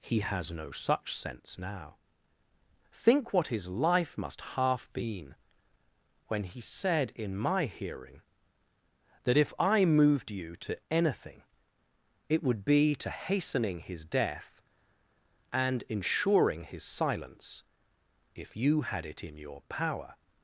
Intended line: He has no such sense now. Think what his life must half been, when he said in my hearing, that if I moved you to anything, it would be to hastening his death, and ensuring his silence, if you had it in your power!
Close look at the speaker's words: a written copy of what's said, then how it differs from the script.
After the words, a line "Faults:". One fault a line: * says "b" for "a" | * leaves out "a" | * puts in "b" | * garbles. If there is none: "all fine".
He has no such sense now. Think what his life must half been, when he said in my hearing, that if I moved you to anything, it would be to hastening his death, and ensuring his silence, if you had it in your power!
Faults:
all fine